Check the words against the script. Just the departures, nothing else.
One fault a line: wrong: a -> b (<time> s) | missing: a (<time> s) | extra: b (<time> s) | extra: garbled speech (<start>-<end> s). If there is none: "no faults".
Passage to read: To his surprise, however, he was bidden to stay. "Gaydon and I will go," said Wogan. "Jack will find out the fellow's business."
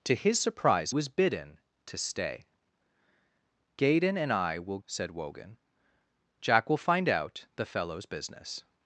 missing: however he (0.9 s)
missing: go (4.8 s)